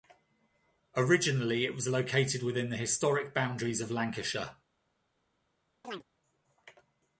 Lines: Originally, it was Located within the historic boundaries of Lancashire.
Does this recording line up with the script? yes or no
yes